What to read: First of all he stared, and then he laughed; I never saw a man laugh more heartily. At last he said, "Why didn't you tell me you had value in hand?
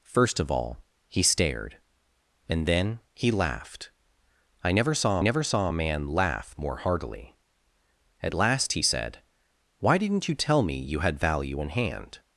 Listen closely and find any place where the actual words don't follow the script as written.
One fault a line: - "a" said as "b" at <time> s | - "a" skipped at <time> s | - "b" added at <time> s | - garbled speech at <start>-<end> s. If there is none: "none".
- "never saw" added at 5.2 s